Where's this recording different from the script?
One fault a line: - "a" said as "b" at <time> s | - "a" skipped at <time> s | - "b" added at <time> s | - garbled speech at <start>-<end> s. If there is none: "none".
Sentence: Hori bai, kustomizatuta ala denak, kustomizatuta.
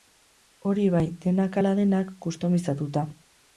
- "kustomizatuta" said as "denak" at 1.3 s